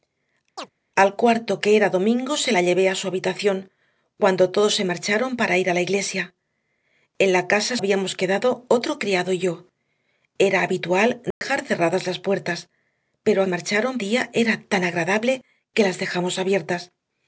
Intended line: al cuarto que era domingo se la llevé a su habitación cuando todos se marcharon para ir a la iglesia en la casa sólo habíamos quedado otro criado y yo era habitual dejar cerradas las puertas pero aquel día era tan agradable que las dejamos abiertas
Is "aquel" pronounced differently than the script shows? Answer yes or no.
yes